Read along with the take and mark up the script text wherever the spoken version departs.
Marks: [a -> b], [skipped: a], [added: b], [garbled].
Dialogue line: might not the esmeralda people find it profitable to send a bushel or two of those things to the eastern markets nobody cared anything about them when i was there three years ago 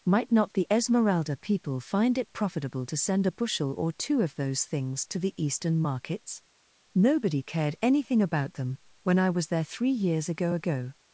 might not the esmeralda people find it profitable to send a bushel or two of those things to the eastern markets nobody cared anything about them when i was there three years ago [added: ago]